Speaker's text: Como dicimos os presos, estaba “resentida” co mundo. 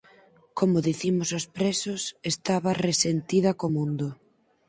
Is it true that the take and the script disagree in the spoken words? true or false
false